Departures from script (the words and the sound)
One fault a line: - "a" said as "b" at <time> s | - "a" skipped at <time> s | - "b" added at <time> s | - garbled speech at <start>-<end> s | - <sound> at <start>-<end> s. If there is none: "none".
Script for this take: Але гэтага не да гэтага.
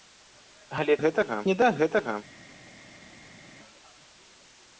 none